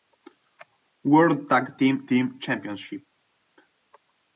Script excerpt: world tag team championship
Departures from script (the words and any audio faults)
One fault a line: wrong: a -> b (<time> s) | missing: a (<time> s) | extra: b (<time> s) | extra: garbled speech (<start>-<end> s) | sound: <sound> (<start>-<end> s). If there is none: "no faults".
extra: team (2.0 s)